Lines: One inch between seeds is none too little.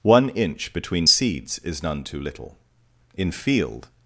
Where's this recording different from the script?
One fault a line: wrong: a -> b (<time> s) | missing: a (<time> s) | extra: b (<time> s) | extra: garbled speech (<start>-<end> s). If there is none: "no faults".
extra: In field (3.1 s)